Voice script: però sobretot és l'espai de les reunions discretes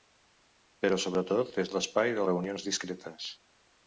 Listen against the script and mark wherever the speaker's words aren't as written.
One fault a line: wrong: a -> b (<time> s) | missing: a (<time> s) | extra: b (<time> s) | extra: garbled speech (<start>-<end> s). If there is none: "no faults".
missing: les (2.2 s)